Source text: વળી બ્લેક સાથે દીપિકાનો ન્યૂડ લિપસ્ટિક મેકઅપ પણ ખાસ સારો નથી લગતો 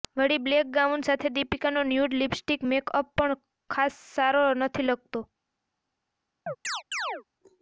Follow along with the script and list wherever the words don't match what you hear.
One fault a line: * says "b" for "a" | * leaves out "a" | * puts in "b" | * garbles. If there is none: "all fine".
* puts in "ગાઉન"